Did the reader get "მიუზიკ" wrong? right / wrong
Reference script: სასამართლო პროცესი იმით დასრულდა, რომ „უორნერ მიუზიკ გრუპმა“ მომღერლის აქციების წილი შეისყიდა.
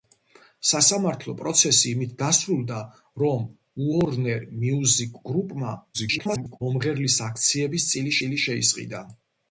right